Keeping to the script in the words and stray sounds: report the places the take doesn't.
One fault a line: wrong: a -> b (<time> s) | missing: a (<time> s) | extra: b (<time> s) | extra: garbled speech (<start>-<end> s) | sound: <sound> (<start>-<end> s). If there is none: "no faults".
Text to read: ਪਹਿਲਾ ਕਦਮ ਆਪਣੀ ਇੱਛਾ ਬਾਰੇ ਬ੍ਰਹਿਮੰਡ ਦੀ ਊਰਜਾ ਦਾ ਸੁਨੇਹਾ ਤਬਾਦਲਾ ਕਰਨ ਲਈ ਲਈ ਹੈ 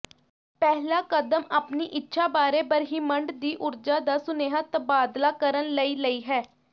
no faults